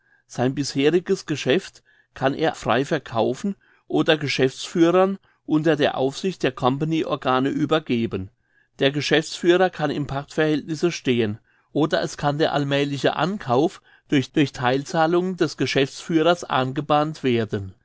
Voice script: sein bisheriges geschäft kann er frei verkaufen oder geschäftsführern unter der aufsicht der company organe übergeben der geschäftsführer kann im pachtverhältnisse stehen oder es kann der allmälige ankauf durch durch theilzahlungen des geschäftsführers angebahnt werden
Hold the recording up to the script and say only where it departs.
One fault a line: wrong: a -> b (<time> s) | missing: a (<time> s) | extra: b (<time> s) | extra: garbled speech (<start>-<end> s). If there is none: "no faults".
no faults